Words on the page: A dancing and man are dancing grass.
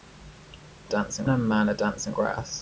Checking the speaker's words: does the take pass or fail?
pass